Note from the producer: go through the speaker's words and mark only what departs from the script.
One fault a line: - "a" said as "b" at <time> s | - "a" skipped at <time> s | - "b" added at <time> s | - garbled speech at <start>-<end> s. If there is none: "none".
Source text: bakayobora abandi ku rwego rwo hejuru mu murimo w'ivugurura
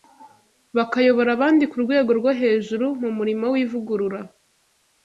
none